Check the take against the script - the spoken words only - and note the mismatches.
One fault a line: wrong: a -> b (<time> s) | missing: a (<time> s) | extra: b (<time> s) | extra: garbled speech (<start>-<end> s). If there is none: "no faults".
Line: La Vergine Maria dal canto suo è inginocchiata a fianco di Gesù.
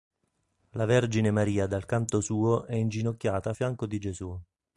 no faults